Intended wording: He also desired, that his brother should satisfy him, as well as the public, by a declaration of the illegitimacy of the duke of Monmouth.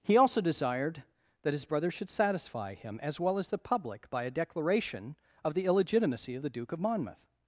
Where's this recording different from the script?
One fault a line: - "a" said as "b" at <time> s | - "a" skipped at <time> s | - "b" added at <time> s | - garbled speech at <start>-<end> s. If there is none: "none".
none